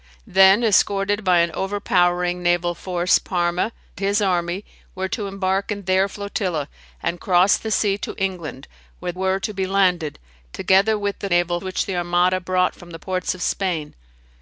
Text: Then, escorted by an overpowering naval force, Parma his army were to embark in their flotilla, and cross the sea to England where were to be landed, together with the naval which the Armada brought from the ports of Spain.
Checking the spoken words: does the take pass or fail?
pass